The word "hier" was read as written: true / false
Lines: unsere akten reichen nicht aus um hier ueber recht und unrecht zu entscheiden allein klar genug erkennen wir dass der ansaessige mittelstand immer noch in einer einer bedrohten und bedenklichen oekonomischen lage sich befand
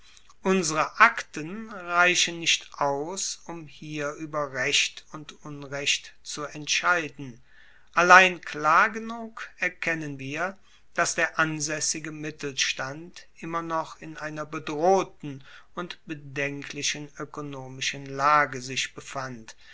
true